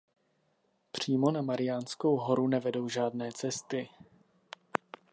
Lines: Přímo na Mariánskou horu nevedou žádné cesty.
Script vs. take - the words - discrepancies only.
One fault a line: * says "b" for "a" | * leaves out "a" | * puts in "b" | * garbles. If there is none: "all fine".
all fine